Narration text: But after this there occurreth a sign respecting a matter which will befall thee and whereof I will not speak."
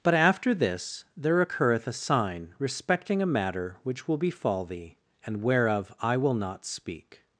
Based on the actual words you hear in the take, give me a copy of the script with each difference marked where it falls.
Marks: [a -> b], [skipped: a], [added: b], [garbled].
But after this there occurreth a sign respecting a matter which will befall thee and whereof I will not speak."